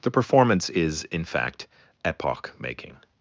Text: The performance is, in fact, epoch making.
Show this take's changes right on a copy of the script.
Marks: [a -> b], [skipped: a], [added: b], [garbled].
The performance is, in fact, epoch making.